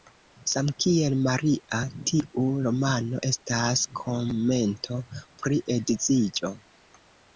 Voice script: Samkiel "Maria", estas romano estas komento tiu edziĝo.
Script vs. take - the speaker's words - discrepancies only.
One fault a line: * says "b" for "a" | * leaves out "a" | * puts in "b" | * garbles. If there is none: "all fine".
* says "tiu" for "estas"
* says "pri" for "tiu"